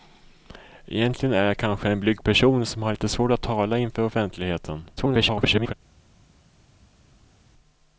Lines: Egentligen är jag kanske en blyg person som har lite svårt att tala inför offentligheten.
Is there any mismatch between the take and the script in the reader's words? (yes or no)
yes